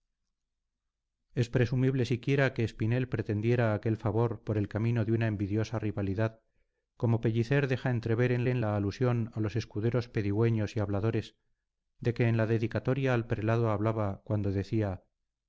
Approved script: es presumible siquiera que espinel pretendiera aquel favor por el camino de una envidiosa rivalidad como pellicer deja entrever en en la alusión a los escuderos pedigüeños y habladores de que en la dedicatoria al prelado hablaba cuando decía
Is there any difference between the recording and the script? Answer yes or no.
no